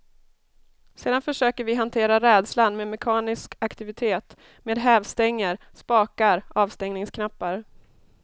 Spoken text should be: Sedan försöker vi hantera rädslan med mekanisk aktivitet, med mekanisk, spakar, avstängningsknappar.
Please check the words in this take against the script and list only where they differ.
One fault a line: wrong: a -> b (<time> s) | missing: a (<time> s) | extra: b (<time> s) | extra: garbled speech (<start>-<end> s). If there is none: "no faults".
wrong: mekanisk -> hävstänger (4.8 s)